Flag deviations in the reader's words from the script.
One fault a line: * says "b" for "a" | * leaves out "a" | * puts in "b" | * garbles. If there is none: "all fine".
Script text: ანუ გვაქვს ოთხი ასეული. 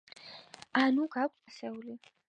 * leaves out "ოთხი"